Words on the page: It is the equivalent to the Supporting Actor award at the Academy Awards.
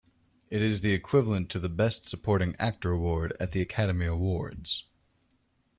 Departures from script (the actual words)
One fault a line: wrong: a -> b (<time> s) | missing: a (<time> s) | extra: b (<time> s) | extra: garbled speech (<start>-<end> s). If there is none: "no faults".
extra: Best (1.7 s)